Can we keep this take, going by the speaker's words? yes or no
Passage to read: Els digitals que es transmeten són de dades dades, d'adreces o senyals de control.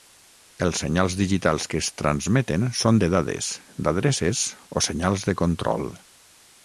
no